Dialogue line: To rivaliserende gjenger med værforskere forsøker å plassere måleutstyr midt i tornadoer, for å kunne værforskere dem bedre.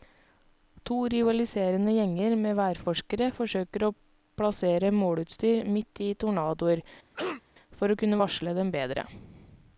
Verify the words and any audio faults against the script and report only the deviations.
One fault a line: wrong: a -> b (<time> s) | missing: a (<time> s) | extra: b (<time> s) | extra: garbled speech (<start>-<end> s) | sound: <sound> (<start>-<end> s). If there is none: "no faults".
sound: cough (7.1-7.4 s)
wrong: værforskere -> varsle (8.2 s)